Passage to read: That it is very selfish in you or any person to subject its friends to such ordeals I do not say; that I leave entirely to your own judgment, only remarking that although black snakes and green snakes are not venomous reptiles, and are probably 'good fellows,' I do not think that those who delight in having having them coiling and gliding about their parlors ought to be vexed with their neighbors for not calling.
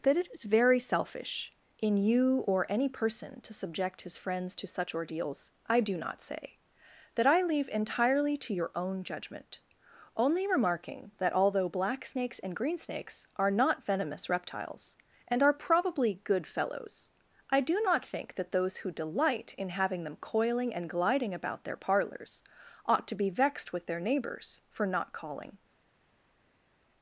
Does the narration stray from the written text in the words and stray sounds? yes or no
yes